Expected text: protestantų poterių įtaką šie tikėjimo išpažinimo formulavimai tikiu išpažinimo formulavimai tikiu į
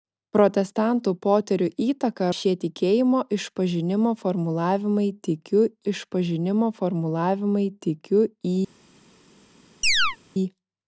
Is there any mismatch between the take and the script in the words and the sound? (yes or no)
yes